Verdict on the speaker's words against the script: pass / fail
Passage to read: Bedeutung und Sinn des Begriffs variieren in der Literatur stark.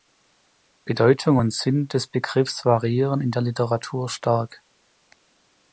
pass